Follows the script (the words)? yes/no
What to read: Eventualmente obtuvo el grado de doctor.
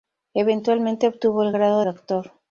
no